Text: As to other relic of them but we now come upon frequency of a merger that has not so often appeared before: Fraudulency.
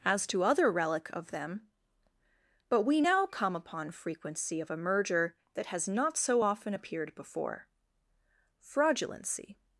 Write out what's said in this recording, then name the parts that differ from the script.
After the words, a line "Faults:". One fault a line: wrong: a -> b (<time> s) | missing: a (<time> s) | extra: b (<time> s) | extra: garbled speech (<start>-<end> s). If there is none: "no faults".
As to other relic of them but we now come upon frequency of a merger that has not so often appeared before: Fraudulency.
Faults:
no faults